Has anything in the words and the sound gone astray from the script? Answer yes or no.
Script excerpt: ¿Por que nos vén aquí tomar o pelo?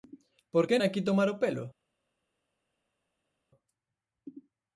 yes